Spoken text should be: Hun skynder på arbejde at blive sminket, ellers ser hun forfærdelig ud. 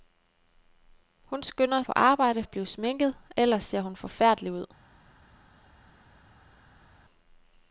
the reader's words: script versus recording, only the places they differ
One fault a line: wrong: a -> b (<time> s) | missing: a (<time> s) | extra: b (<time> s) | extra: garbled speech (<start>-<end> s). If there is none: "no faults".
no faults